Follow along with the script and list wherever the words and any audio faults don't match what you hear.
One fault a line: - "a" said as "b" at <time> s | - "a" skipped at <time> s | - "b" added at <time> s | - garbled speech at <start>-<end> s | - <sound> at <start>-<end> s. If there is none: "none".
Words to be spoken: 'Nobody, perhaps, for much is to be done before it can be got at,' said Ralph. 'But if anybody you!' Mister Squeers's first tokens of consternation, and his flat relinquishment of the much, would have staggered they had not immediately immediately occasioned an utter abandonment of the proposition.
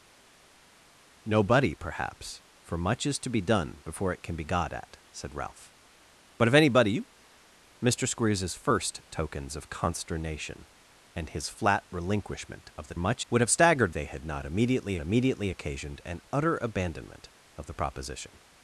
none